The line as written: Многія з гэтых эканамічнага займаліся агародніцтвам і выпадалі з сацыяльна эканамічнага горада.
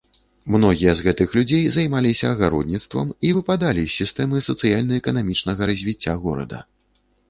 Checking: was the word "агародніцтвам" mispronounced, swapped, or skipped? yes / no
no